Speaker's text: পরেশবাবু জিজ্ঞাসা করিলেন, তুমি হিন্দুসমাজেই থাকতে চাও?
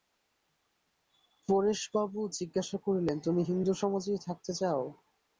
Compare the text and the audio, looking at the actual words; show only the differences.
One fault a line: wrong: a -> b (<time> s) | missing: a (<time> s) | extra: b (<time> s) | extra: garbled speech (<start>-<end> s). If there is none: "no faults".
no faults